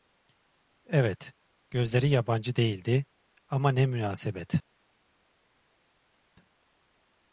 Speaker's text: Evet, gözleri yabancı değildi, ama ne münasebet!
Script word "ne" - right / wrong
right